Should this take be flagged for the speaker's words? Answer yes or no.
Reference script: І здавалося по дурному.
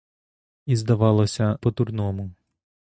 no